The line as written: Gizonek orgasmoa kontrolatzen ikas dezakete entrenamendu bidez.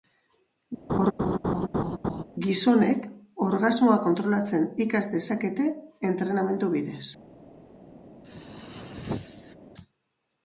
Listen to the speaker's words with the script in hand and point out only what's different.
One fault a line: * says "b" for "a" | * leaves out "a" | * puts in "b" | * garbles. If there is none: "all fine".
all fine